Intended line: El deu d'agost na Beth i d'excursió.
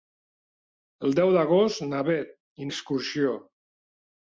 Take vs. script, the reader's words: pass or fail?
pass